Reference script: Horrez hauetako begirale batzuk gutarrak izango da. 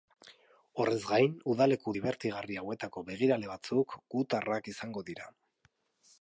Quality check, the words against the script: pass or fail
fail